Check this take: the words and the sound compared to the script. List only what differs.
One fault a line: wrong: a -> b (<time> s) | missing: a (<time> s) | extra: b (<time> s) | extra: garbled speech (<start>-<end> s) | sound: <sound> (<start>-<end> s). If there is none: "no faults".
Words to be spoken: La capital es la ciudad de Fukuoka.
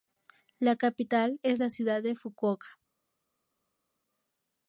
no faults